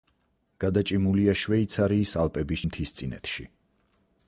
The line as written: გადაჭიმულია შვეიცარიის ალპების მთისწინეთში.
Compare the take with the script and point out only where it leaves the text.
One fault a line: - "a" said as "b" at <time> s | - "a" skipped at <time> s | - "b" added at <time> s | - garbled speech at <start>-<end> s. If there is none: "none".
none